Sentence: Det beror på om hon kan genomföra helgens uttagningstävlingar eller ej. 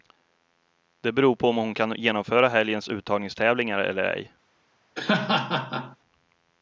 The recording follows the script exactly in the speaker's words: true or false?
true